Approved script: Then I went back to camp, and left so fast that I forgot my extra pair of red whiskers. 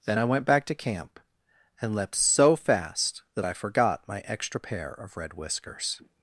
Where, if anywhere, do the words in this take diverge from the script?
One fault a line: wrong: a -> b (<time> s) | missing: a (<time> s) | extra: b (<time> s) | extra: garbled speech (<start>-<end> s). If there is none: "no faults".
wrong: left -> leapt (1.9 s)